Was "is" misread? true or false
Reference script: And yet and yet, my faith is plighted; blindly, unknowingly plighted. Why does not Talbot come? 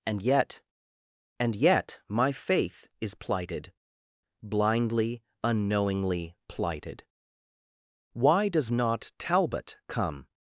false